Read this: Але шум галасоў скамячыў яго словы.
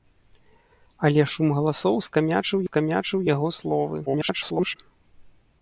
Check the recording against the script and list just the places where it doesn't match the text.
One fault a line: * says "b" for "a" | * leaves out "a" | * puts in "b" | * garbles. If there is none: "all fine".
* puts in "скамячыў"
* garbles